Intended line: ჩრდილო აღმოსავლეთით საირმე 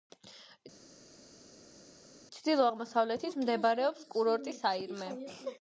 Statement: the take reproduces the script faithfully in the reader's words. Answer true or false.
false